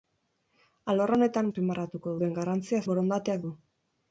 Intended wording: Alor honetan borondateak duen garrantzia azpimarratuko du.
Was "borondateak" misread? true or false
true